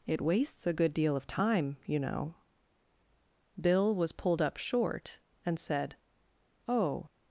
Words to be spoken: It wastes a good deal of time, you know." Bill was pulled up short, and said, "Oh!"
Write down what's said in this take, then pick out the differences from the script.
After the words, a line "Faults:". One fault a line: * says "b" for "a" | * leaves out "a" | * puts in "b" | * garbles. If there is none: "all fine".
It wastes a good deal of time, you know." Bill was pulled up short, and said, "Oh!"
Faults:
all fine